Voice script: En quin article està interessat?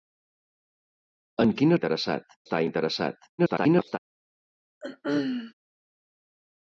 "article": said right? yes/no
no